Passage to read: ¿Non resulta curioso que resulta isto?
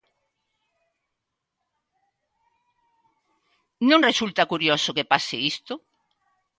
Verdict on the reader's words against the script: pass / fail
fail